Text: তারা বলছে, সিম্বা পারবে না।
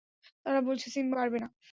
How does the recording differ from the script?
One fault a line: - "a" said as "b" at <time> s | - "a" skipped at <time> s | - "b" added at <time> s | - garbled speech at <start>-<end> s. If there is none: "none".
none